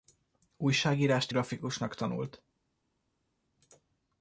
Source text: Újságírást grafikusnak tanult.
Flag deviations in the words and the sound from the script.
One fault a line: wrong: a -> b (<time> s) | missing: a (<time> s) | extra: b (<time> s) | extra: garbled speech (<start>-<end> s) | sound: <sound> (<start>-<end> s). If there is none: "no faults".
no faults